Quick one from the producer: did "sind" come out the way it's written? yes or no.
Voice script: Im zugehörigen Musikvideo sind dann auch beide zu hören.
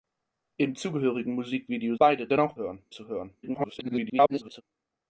no